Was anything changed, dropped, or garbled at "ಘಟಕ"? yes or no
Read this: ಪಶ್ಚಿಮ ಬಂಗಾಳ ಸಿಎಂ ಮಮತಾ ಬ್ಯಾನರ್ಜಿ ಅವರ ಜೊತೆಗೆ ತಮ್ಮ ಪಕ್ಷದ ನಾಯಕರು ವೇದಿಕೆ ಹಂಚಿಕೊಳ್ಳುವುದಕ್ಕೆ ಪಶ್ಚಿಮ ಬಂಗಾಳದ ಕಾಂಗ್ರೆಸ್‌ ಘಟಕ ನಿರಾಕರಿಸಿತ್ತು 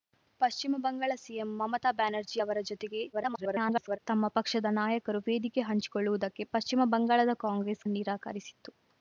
yes